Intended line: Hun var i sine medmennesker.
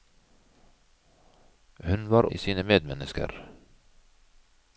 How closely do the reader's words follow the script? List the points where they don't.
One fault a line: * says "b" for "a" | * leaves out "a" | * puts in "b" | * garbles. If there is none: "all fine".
all fine